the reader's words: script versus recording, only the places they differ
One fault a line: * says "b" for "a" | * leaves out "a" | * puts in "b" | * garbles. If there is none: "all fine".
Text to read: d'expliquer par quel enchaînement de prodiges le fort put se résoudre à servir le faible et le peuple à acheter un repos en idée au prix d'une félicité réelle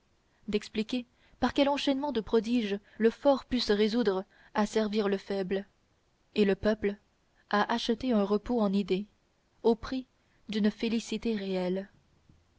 all fine